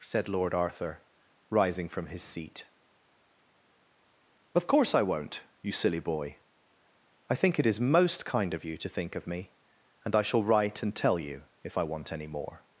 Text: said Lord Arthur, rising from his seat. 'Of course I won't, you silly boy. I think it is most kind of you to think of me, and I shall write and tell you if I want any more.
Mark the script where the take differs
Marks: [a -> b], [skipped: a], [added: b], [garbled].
said Lord Arthur, rising from his seat. 'Of course I won't, you silly boy. I think it is most kind of you to think of me, and I shall write and tell you if I want any more.